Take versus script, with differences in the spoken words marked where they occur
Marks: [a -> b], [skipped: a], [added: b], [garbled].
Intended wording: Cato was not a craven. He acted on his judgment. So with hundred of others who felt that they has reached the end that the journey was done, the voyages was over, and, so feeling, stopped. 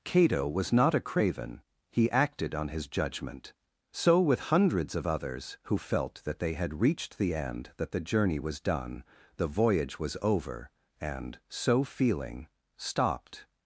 Cato was not a craven. He acted on his judgment. So with [hundred -> hundreds] of others who felt that they [has -> had] reached the end that the journey was done, the [voyages -> voyage] was over, and, so feeling, stopped.